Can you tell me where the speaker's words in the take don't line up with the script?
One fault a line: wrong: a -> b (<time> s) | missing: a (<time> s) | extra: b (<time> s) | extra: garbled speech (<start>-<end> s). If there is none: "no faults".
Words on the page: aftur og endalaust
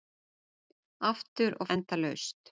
no faults